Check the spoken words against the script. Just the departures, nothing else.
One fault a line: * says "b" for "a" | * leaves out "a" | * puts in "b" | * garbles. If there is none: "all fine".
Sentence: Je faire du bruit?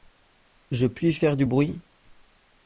* puts in "puis"